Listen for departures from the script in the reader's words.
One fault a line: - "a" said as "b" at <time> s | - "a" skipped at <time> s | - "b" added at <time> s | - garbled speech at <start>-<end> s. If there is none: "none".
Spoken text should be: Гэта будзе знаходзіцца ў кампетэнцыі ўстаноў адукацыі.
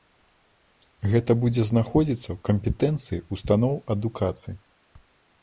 none